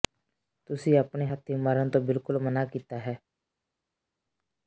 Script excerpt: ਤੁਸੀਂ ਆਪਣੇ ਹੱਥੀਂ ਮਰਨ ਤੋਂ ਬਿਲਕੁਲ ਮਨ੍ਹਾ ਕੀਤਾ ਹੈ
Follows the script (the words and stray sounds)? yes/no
yes